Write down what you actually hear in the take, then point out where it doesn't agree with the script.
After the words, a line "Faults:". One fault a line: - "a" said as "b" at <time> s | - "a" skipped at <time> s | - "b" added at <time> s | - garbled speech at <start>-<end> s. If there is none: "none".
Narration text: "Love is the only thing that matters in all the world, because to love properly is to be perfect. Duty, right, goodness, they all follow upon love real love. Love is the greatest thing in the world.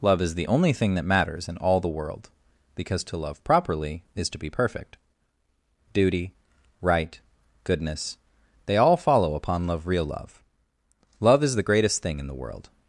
"Love is the only thing that matters in all the world, because to love properly is to be perfect. Duty, right, goodness, they all follow upon love real love. Love is the greatest thing in the world.
Faults:
none